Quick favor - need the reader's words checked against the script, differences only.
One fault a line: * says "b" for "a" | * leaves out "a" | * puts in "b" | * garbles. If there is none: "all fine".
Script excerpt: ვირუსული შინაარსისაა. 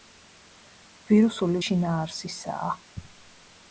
all fine